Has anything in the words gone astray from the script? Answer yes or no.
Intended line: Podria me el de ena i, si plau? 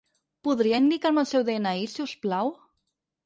yes